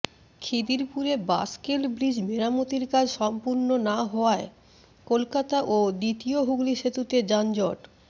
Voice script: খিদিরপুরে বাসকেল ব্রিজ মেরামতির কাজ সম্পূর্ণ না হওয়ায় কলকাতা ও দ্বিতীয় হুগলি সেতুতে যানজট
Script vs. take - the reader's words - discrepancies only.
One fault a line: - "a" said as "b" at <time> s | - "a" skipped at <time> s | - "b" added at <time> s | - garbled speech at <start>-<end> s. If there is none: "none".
none